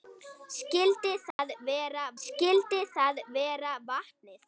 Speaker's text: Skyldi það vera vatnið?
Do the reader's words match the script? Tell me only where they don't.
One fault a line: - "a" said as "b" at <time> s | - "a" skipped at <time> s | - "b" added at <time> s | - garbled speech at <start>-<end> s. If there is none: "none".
- "skyldi það vera" added at 2.2 s